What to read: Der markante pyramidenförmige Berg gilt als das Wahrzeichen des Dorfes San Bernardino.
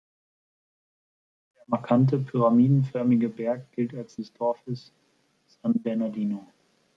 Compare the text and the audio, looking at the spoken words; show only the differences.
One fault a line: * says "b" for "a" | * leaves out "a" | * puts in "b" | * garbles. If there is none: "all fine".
* leaves out "das Wahrzeichen"